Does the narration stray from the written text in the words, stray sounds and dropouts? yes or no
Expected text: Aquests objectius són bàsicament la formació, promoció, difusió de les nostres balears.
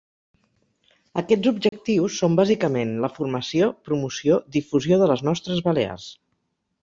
yes